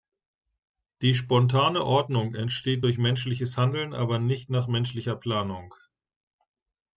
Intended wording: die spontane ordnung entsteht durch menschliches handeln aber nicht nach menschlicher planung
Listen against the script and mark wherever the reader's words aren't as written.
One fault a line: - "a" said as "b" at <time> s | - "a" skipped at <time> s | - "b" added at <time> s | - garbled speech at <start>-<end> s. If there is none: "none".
none